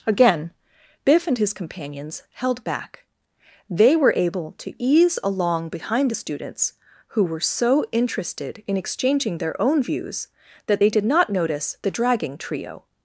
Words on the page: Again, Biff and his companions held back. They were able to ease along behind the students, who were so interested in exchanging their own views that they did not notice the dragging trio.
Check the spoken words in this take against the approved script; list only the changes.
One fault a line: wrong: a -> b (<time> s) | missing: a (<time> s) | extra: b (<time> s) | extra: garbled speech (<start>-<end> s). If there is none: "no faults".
no faults